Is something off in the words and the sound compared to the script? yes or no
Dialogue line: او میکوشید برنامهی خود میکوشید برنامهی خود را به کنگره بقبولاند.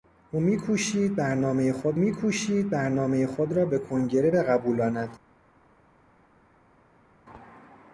no